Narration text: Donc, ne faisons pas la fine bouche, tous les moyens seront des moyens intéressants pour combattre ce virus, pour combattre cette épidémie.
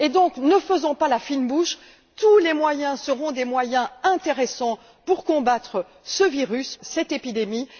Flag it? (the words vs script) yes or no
yes